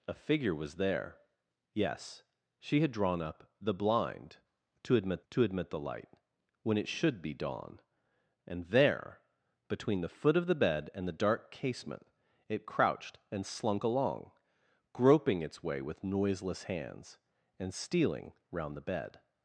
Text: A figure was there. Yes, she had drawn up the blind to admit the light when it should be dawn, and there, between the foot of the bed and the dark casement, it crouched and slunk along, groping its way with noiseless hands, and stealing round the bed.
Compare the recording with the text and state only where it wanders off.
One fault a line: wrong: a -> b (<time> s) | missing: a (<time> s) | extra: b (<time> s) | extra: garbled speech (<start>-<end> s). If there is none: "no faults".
extra: to admit (5.3 s)